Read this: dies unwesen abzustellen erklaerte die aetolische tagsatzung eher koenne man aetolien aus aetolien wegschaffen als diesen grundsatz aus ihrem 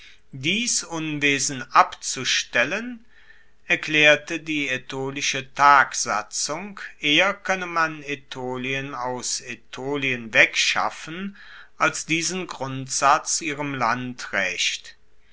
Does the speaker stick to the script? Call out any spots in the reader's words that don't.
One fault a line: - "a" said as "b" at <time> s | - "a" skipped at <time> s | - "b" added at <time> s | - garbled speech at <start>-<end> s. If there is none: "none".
- "aus" skipped at 13.4 s